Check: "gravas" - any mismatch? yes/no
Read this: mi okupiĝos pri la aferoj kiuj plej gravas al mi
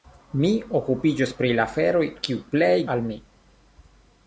yes